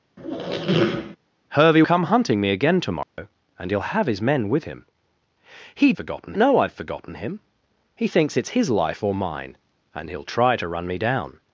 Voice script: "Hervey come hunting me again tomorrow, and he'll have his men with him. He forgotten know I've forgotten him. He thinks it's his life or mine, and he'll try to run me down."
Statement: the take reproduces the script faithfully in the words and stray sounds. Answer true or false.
false